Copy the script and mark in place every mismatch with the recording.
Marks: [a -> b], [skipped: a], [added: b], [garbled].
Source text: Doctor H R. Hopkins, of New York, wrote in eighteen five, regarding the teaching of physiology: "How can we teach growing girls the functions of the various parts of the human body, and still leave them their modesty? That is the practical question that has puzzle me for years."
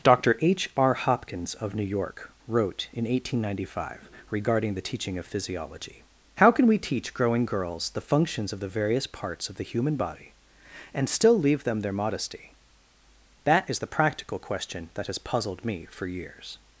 Doctor H R. Hopkins, of New York, wrote in eighteen [added: ninety] five, regarding the teaching of physiology: "How can we teach growing girls the functions of the various parts of the human body, and still leave them their modesty? That is the practical question that has [puzzle -> puzzled] me for years."